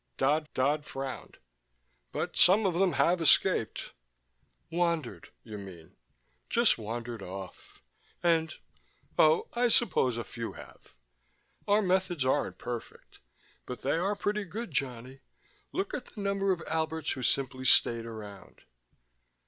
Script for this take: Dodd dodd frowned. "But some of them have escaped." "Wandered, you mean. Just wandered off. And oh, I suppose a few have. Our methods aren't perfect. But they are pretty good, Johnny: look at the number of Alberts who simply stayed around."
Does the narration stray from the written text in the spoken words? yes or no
no